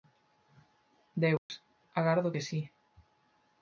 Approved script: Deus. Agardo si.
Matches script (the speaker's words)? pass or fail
fail